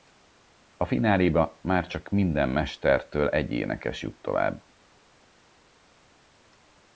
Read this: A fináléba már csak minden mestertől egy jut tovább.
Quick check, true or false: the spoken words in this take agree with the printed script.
false